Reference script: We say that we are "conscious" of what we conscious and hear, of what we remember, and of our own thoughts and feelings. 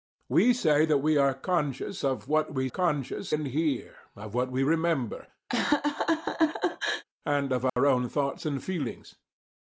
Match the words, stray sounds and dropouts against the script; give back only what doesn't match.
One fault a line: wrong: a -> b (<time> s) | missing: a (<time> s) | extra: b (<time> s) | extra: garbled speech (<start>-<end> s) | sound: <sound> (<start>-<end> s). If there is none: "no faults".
sound: laugh (5.5-7.0 s)
sound: dropout (7.7-7.8 s)